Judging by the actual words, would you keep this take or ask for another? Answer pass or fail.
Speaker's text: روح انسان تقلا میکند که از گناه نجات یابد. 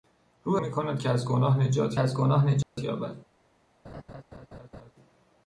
fail